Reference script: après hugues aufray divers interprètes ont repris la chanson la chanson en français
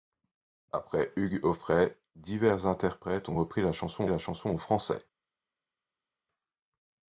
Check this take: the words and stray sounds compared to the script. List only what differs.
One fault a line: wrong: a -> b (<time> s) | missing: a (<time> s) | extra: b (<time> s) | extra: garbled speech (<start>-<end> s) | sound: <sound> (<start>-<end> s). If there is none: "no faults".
no faults